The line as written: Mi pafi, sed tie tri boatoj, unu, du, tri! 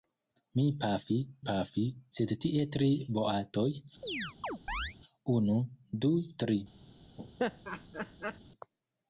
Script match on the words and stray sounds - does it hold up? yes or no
no